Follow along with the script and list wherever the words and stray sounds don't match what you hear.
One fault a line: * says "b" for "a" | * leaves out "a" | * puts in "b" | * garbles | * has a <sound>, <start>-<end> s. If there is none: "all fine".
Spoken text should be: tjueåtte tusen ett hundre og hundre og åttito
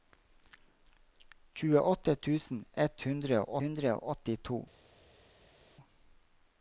all fine